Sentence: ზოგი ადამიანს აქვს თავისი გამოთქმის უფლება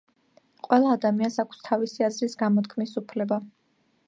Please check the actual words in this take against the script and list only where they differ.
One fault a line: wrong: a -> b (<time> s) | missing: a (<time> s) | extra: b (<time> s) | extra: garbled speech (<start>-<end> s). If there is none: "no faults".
wrong: ზოგი -> ყველა (0.7 s)
extra: აზრის (2.1 s)